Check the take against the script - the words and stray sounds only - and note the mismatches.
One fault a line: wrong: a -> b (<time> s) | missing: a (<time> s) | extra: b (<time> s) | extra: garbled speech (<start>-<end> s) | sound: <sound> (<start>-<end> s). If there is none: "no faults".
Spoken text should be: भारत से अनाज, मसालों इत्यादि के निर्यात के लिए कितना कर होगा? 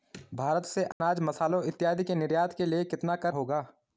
sound: dropout (0.9-1.0 s)